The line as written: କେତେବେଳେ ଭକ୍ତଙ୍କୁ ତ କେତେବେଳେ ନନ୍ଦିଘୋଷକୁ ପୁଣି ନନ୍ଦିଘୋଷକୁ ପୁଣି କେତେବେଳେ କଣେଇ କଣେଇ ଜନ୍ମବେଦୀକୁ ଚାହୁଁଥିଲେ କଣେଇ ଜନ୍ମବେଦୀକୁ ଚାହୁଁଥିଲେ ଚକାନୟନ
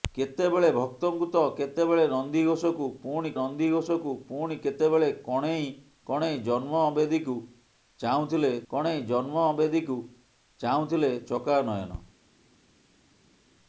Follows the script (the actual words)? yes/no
yes